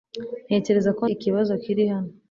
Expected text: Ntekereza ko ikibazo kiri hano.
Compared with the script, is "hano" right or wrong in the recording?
right